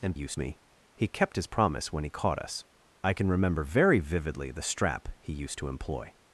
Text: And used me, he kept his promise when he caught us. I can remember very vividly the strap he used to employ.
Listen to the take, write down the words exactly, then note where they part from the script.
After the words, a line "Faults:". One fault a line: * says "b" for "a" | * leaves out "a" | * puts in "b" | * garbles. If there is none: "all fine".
And used me, he kept his promise when he caught us. I can remember very vividly the strap he used to employ.
Faults:
all fine